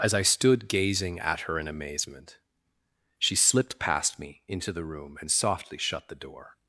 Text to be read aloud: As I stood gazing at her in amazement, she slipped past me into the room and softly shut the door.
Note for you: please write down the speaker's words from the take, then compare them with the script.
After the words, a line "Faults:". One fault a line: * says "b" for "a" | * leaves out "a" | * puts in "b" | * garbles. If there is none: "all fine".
As I stood gazing at her in amazement, she slipped past me into the room and softly shut the door.
Faults:
all fine